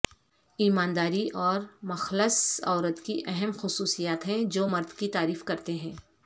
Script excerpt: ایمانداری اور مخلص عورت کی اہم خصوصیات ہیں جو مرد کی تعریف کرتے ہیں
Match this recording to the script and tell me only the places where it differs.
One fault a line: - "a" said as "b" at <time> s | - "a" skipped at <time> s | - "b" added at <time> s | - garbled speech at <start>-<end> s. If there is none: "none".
none